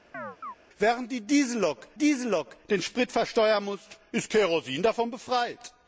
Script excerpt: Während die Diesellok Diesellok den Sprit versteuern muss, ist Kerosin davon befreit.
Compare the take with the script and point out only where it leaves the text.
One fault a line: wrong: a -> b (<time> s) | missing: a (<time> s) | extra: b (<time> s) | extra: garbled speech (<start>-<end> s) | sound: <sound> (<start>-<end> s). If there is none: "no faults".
sound: chirp (0.1-0.6 s)